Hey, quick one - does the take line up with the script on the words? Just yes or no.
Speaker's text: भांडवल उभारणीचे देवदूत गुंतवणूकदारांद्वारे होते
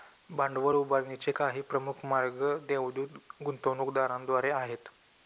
no